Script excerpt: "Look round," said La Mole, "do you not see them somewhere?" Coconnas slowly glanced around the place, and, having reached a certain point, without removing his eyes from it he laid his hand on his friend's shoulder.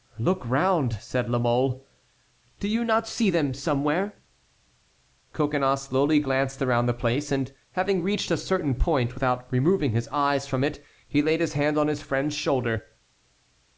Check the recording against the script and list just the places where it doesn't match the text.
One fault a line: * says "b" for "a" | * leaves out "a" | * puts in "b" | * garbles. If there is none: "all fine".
all fine